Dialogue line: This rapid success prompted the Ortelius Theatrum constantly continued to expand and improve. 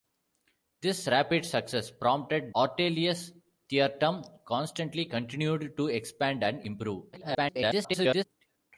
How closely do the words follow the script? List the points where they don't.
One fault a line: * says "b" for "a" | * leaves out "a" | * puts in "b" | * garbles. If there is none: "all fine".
* leaves out "the"
* garbles